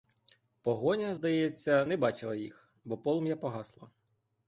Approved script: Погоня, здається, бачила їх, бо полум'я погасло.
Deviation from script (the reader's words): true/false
true